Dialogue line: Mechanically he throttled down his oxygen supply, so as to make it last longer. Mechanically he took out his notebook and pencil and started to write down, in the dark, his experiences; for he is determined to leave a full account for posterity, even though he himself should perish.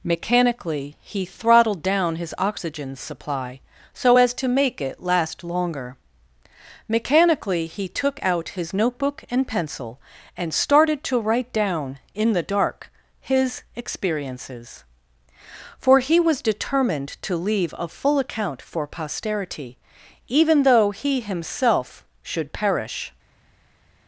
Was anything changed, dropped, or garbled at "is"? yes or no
yes